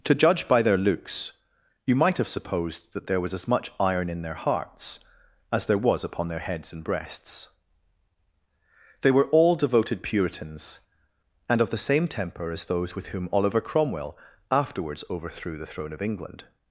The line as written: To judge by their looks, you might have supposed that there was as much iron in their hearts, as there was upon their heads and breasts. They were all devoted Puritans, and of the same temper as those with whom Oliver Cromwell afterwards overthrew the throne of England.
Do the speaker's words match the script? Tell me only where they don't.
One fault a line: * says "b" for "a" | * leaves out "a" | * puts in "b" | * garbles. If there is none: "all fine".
all fine